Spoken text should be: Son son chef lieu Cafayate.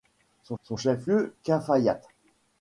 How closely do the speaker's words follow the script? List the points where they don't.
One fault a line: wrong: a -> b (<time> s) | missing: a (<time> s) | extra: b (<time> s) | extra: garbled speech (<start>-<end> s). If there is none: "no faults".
no faults